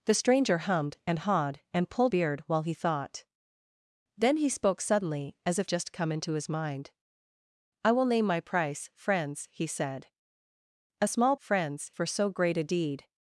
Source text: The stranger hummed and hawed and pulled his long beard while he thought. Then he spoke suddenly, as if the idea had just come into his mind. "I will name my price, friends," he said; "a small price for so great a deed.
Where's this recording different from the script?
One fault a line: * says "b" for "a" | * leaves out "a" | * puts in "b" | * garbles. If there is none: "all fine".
* leaves out "his long"
* leaves out "the idea had"
* says "friends" for "price"